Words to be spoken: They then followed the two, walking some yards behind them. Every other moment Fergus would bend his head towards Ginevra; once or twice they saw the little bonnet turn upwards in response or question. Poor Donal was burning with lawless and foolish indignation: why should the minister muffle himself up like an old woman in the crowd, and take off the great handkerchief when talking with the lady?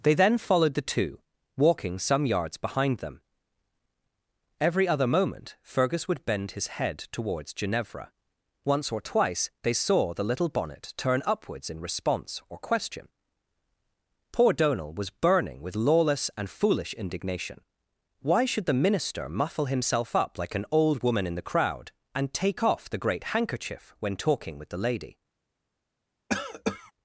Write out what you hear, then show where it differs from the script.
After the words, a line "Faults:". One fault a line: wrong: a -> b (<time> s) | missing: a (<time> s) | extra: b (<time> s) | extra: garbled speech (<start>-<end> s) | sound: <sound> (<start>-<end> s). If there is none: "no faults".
They then followed the two, walking some yards behind them. Every other moment Fergus would bend his head towards Ginevra; once or twice they saw the little bonnet turn upwards in response or question. Poor Donal was burning with lawless and foolish indignation: why should the minister muffle himself up like an old woman in the crowd, and take off the great handkerchief when talking with the lady?
Faults:
sound: cough (26.3-26.9 s)